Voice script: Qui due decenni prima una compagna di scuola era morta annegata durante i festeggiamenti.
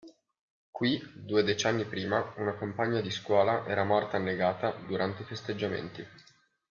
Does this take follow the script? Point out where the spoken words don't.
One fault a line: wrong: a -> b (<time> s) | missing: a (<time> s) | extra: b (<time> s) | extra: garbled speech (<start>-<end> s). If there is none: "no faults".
no faults